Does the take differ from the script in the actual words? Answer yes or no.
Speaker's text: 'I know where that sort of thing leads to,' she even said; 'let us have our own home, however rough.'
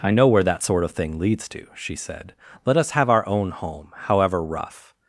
yes